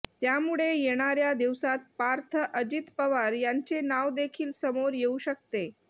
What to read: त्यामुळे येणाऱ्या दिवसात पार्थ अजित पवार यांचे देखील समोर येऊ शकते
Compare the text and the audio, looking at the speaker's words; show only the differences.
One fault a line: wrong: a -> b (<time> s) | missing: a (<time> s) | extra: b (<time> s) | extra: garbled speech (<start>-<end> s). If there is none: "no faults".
extra: नाव (3.8 s)